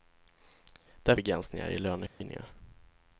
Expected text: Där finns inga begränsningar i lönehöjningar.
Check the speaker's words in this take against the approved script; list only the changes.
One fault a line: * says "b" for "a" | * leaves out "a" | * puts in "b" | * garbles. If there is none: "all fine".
* leaves out "finns inga"